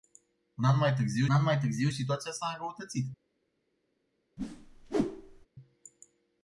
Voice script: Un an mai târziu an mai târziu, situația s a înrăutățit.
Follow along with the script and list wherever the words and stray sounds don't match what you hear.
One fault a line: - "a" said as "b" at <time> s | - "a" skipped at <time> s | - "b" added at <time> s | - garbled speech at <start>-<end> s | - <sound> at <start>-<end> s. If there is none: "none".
- whoosh at 4.4-5.5 s